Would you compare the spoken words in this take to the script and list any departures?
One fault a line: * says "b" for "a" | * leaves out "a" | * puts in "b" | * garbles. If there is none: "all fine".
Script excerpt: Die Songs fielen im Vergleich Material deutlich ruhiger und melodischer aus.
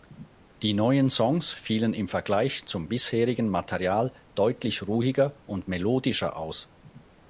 * puts in "neuen"
* puts in "zum bisherigen"